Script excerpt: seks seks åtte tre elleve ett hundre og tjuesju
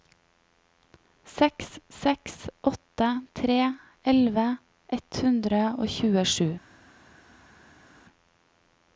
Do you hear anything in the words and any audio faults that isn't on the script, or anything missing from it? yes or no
no